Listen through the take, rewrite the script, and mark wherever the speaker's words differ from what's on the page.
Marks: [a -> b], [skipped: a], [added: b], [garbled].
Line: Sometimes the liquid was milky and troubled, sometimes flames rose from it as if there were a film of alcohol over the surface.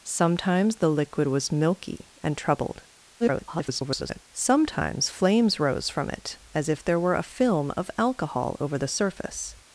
Sometimes the liquid was milky and troubled, [garbled] sometimes flames rose from it as if there were a film of alcohol over the surface.